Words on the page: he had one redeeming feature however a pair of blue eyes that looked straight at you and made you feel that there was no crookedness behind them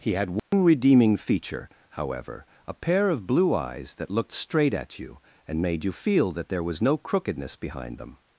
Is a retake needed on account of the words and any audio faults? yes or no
yes